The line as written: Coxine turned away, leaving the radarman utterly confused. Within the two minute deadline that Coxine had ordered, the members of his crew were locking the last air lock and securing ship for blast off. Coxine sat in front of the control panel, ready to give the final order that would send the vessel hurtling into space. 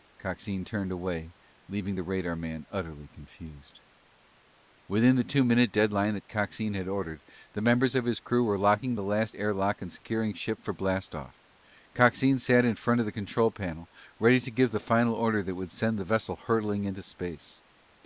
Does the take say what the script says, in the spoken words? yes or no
yes